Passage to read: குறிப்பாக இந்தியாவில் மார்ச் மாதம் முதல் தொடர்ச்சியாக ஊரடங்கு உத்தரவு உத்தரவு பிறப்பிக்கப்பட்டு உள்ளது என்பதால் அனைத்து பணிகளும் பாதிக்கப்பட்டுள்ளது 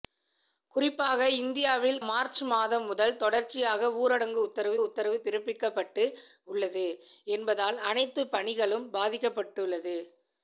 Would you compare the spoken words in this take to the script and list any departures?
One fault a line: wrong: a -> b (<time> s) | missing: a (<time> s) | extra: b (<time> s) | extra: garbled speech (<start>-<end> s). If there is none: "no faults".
no faults